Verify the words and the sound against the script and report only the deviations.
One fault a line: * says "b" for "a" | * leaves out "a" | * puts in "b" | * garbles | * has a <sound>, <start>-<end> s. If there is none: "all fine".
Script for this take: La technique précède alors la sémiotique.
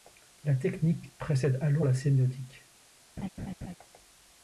* has a laugh, 3.2-3.7 s